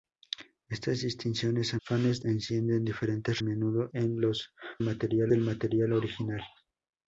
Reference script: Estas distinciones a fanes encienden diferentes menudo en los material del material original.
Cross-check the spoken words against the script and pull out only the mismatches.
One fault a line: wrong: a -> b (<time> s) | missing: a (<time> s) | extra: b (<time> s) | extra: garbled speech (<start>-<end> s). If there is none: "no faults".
no faults